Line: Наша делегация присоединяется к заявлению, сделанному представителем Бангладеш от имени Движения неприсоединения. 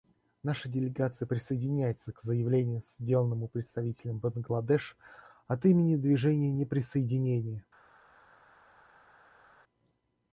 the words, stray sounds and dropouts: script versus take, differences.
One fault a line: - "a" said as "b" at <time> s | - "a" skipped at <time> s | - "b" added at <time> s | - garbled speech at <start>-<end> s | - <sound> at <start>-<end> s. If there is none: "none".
none